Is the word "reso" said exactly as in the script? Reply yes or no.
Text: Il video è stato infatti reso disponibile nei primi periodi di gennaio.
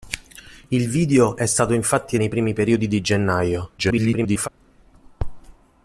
no